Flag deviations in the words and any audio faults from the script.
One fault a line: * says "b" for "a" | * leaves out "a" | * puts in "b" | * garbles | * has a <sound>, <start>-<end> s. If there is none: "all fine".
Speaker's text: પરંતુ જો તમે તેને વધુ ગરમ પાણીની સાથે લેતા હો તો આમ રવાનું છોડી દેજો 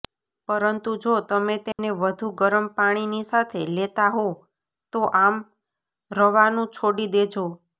* has a dropout, 1.7-1.8 s